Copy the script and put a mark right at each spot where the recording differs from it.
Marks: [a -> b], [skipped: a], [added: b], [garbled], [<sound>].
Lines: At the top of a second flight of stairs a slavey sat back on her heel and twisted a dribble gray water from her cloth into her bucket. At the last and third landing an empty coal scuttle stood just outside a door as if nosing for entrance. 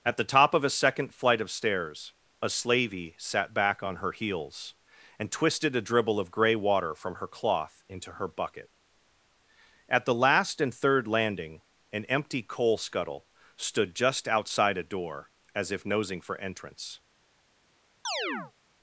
At the top of a second flight of stairs a slavey sat back on her [heel -> heels] and twisted a dribble [added: of] gray water from her cloth into her bucket. At the last and third landing an empty coal scuttle stood just outside a door as if nosing for entrance. [chirp]